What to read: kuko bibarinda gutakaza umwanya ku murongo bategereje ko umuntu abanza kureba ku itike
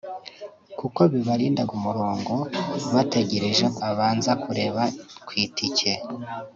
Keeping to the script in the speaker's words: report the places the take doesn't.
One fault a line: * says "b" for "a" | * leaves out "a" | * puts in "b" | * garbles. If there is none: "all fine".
* leaves out "gutakaza umwanya"
* leaves out "umuntu"